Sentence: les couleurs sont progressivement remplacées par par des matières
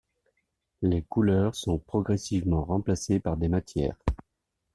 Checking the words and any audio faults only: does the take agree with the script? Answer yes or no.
no